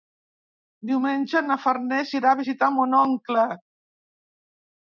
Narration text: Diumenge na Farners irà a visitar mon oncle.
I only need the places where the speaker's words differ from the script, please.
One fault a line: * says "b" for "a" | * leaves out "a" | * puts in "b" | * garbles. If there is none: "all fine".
all fine